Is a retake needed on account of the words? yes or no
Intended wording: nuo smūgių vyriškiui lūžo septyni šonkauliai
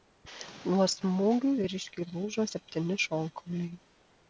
no